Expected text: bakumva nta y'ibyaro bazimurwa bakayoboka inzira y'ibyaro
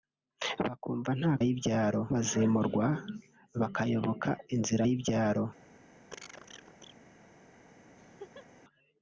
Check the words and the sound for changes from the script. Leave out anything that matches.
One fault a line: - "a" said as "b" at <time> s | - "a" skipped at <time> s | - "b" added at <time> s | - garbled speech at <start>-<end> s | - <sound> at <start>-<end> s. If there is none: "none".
- cough at 6.1-7.0 s
- laugh at 8.0-8.5 s